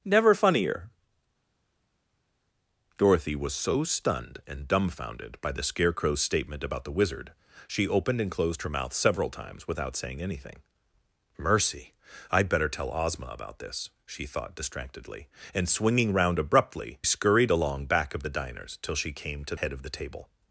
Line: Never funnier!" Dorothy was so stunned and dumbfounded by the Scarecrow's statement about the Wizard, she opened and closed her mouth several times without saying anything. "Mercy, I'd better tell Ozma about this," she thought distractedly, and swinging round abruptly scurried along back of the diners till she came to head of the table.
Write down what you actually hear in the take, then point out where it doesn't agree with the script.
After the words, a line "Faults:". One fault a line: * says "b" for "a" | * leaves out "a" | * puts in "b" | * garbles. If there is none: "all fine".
Never funnier!" Dorothy was so stunned and dumbfounded by the Scarecrow's statement about the Wizard, she opened and closed her mouth several times without saying anything. "Mercy, I'd better tell Ozma about this," she thought distractedly, and swinging round abruptly scurried along back of the diners till she came to head of the table.
Faults:
all fine